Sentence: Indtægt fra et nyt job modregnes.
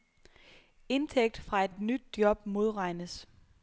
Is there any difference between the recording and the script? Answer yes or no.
yes